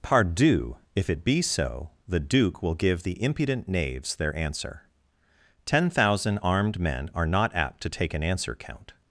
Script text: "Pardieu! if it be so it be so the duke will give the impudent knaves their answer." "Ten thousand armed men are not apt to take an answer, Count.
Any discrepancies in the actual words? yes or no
yes